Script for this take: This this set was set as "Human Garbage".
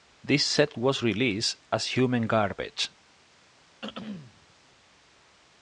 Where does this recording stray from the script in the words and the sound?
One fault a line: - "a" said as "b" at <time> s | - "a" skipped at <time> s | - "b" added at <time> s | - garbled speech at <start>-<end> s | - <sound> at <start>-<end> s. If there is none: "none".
- "this" skipped at 0.4 s
- "set" said as "released" at 1.0 s
- throat clearing at 3.8-4.5 s